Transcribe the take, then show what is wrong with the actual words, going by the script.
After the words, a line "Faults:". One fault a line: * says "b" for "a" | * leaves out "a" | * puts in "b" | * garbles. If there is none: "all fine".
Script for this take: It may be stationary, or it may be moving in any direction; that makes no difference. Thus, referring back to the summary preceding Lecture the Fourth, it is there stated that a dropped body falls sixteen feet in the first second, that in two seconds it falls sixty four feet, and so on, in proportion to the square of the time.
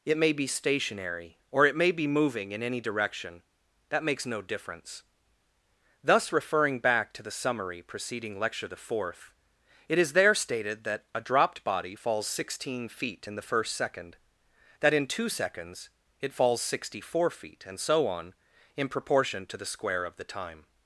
It may be stationary, or it may be moving in any direction; that makes no difference. Thus, referring back to the summary preceding Lecture the Fourth, it is there stated that a dropped body falls sixteen feet in the first second, that in two seconds it falls sixty four feet, and so on, in proportion to the square of the time.
Faults:
all fine